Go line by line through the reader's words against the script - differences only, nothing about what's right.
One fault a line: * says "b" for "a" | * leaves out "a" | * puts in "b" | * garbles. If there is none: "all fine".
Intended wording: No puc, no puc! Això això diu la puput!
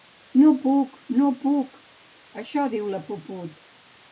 * leaves out "això"